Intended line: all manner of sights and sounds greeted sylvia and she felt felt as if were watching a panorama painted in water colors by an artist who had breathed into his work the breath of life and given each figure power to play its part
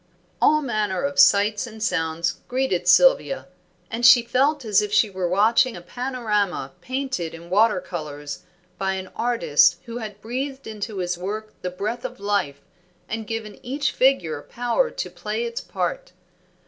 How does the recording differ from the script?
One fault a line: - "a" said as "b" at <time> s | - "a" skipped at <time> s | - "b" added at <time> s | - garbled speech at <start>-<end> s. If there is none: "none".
- "felt" skipped at 4.7 s
- "she" added at 4.9 s